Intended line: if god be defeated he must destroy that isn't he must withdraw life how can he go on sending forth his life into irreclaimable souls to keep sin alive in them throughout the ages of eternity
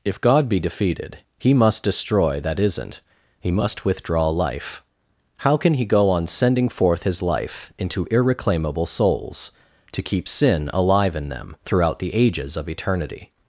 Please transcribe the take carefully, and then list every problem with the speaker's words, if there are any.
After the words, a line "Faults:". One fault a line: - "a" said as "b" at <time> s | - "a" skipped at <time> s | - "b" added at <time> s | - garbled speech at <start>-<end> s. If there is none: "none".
if god be defeated he must destroy that isn't he must withdraw life how can he go on sending forth his life into irreclaimable souls to keep sin alive in them throughout the ages of eternity
Faults:
none